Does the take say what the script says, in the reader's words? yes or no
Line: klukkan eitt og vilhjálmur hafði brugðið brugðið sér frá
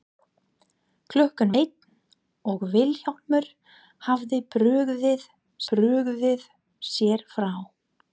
yes